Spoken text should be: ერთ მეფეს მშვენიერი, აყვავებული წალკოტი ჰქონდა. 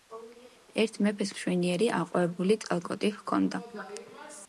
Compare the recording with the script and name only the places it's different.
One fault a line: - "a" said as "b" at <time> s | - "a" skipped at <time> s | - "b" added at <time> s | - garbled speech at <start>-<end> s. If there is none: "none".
none